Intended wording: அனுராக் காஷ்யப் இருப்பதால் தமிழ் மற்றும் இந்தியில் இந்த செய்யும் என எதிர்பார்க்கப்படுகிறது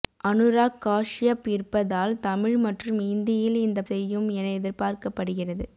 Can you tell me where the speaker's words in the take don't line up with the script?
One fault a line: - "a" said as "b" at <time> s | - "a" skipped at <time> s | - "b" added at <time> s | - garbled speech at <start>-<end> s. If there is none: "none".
none